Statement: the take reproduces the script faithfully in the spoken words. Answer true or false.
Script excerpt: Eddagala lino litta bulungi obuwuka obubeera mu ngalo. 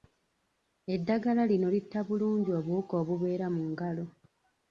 true